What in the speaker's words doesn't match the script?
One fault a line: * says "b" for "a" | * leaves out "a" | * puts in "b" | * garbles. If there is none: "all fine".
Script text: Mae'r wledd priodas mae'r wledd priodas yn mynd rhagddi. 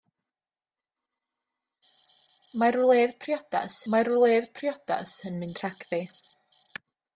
all fine